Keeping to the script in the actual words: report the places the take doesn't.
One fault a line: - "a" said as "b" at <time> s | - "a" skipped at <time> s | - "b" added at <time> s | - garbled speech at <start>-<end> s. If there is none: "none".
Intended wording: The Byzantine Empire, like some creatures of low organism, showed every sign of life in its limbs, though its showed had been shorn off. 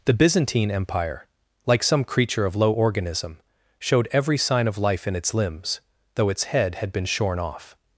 - "creatures" said as "creature" at 2.0 s
- "showed" said as "head" at 6.4 s